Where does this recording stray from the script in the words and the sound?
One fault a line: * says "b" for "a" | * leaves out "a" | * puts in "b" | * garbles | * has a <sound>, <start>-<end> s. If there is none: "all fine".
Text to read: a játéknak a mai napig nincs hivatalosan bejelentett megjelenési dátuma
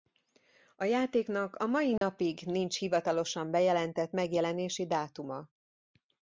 * has a dropout, 2.0-2.0 s